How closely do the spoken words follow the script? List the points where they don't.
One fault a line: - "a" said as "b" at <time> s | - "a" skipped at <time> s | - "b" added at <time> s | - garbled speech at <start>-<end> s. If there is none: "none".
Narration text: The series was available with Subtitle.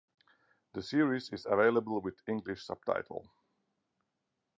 - "was" said as "is" at 1.3 s
- "English" added at 2.3 s